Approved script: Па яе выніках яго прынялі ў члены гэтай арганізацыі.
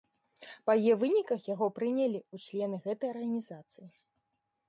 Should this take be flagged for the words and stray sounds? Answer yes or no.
no